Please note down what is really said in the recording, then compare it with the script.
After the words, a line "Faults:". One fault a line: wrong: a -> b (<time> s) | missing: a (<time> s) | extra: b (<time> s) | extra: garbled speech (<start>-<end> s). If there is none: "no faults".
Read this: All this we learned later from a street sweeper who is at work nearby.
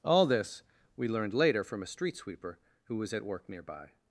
All this we learned later from a street sweeper who was at work nearby.
Faults:
wrong: is -> was (3.0 s)